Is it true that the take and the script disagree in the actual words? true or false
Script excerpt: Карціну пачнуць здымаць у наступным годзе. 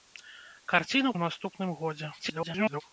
true